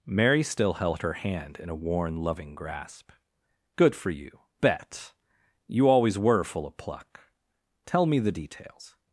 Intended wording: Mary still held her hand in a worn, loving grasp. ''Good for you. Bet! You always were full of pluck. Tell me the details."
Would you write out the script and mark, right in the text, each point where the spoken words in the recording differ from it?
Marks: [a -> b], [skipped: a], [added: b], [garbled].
Mary still held her hand in a worn, loving grasp. ''Good for you. Bet! You always were full of pluck. Tell me the details."